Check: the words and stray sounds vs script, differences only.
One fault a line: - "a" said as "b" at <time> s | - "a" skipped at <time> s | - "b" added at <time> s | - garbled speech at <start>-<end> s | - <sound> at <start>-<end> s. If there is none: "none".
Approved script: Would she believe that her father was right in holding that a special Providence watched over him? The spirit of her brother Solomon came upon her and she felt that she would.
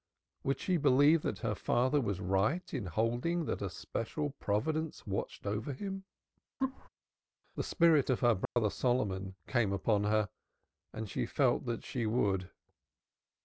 - laugh at 6.6-6.9 s
- dropout at 8.4-8.6 s